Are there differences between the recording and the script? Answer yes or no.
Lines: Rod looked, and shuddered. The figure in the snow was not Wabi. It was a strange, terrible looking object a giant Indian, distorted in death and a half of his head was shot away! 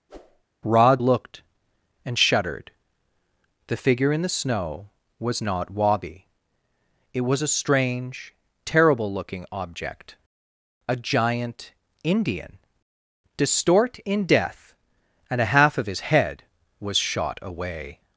yes